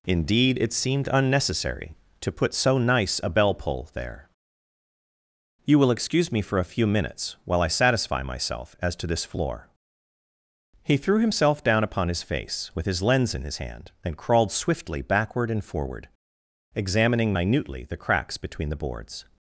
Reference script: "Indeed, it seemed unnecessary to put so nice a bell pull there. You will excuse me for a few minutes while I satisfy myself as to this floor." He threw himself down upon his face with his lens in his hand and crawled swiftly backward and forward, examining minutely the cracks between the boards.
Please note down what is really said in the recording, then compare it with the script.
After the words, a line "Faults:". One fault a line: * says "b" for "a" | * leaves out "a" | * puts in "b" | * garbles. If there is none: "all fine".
"Indeed, it seemed unnecessary to put so nice a bell pull there. You will excuse me for a few minutes while I satisfy myself as to this floor." He threw himself down upon his face with his lens in his hand and crawled swiftly backward and forward, examining minutely the cracks between the boards.
Faults:
all fine